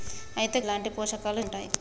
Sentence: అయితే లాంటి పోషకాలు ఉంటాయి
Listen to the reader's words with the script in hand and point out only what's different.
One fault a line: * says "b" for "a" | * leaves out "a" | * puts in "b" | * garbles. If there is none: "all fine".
all fine